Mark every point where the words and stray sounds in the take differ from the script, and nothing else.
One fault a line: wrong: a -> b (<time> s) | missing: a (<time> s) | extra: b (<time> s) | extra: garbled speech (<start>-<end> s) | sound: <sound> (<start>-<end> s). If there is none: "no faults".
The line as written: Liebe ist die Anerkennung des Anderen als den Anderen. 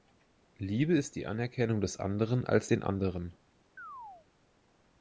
sound: chirp (3.8-4.3 s)